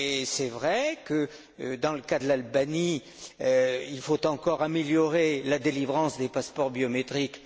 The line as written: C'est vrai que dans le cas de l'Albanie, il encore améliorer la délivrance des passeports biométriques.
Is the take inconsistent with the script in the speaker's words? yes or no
yes